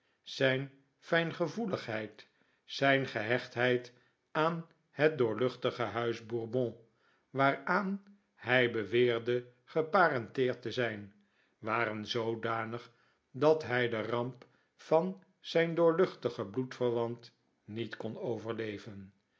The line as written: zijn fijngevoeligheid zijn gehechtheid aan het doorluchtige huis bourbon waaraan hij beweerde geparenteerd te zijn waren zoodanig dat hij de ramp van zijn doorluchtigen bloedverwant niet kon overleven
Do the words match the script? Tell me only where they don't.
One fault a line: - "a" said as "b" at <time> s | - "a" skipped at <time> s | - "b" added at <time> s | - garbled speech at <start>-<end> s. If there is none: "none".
none